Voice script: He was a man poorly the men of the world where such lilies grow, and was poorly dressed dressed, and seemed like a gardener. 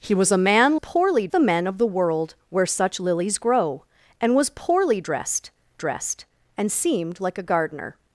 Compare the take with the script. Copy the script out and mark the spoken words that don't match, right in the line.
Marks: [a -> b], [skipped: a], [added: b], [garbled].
He was a man poorly the men of the world where such lilies grow, and was poorly dressed dressed, and seemed like a gardener.